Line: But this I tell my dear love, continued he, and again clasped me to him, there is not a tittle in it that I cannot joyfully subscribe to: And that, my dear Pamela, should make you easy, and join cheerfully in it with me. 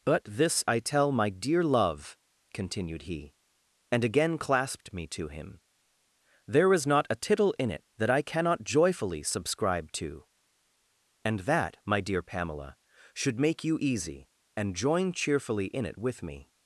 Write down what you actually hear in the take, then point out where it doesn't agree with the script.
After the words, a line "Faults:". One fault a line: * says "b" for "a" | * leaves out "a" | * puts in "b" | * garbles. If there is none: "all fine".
But this I tell my dear love, continued he, and again clasped me to him, there is not a tittle in it that I cannot joyfully subscribe to: And that, my dear Pamela, should make you easy, and join cheerfully in it with me.
Faults:
all fine